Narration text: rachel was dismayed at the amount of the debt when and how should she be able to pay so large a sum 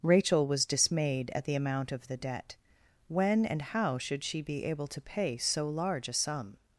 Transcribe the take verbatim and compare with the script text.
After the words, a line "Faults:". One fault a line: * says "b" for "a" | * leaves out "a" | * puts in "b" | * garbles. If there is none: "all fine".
rachel was dismayed at the amount of the debt when and how should she be able to pay so large a sum
Faults:
all fine